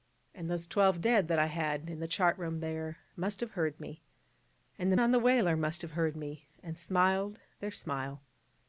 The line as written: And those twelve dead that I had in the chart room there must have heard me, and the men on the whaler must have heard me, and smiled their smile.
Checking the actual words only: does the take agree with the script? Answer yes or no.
no